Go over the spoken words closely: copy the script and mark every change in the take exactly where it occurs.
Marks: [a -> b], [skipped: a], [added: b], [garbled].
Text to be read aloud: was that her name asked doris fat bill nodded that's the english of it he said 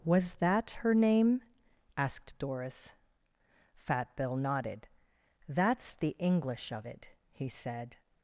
was that her name asked doris fat bill nodded that's the english of it he said